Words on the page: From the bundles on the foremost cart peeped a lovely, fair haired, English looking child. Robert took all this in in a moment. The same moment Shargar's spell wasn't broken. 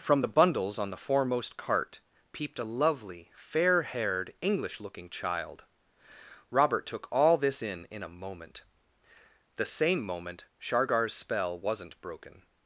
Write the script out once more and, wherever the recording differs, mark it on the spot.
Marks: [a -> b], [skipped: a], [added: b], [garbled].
From the bundles on the foremost cart peeped a lovely, fair haired, English looking child. Robert took all this in in a moment. The same moment Shargar's spell wasn't broken.